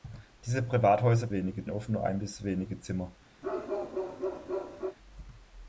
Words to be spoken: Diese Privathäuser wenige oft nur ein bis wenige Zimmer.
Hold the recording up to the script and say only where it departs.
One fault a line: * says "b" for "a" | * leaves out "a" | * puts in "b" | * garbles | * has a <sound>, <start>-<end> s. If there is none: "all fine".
* has a bark, 3.4-5.0 s